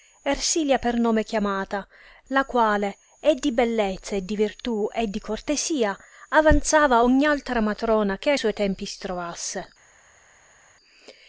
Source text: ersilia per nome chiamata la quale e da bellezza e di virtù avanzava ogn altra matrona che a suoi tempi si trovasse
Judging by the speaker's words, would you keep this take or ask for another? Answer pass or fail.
fail